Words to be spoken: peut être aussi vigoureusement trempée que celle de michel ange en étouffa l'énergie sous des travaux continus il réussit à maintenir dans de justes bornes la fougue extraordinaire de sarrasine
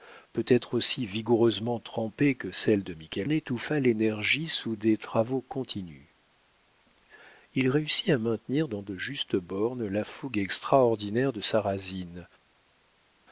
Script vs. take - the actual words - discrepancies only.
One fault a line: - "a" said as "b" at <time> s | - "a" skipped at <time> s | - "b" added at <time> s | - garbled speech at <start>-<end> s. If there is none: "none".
- "ange en" skipped at 3.3 s